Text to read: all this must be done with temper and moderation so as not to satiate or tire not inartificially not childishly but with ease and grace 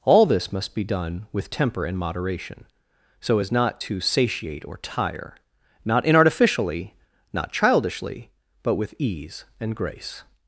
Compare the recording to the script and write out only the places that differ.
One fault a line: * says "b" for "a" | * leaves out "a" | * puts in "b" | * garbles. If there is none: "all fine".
all fine